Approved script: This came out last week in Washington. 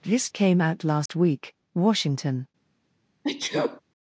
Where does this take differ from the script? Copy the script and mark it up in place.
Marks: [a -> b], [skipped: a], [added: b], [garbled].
This came out last week [skipped: in] Washington.